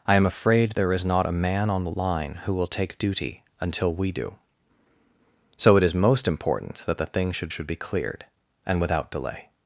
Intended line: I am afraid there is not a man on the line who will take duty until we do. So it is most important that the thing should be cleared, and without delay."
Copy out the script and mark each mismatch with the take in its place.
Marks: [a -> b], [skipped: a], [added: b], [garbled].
I am afraid there is not a man on the line who will take duty until we do. So it is most important that the thing should [added: should] be cleared, and without delay."